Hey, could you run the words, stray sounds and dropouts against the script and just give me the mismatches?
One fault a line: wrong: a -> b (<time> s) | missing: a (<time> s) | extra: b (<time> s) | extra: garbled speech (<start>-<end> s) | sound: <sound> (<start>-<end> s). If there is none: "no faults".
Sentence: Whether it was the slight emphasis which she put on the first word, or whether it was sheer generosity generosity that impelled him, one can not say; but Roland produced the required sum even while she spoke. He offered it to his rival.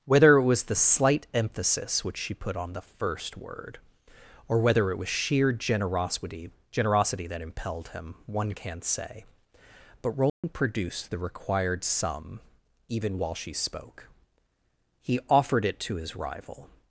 sound: dropout (10.3-10.4 s)